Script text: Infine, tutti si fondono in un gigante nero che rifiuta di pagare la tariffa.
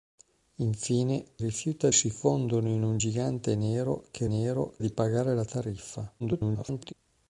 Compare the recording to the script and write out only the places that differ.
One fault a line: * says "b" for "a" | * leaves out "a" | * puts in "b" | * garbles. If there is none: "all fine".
* says "rifiuta" for "tutti"
* says "nero" for "rifiuta"
* garbles